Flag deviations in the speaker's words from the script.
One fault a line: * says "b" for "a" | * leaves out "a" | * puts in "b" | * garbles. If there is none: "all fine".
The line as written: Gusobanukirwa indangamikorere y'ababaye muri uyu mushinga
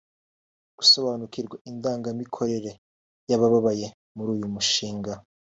all fine